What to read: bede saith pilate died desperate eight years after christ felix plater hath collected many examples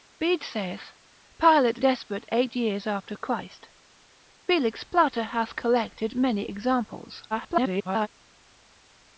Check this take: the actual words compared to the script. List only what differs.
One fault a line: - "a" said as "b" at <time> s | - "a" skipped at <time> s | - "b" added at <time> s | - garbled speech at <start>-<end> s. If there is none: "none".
- "died" skipped at 1.8 s
- garbled speech at 7.3-8.1 s